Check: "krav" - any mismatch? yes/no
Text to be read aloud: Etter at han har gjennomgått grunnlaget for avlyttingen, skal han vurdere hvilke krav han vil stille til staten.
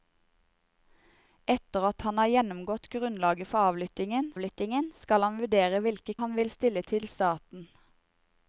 yes